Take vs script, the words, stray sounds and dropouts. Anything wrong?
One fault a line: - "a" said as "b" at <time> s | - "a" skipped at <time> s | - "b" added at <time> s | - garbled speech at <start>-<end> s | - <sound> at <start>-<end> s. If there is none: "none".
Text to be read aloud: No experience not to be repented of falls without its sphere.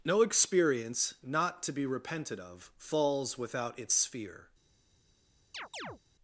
- chirp at 5.5-6.0 s